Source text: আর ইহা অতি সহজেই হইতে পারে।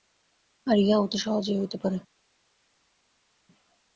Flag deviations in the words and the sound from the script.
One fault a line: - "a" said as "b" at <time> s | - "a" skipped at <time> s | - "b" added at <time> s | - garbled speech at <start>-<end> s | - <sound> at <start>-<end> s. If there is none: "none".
none